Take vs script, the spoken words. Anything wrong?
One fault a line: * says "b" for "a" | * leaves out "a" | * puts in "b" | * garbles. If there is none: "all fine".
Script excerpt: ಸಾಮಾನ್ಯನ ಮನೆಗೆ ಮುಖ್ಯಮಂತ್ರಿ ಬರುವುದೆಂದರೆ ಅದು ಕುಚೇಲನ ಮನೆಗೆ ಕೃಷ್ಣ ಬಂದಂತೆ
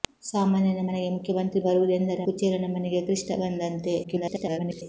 * leaves out "ಅದು"
* garbles